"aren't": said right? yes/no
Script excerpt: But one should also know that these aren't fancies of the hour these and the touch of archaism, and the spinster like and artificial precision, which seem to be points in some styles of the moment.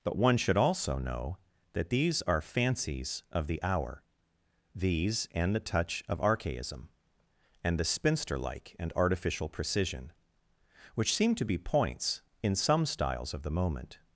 no